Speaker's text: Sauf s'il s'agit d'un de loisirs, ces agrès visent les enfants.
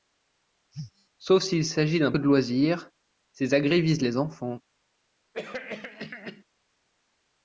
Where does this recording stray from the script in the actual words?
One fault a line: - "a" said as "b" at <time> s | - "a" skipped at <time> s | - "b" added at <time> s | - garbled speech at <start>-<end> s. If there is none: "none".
none